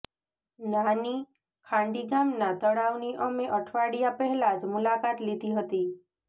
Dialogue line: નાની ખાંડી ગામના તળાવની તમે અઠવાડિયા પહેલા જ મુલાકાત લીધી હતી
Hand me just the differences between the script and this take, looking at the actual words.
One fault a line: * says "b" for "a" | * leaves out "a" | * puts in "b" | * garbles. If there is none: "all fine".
* says "અમે" for "તમે"